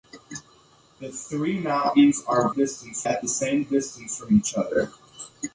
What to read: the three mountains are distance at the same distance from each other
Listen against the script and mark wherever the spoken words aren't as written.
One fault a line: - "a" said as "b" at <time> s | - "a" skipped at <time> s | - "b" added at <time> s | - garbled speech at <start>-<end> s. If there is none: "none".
none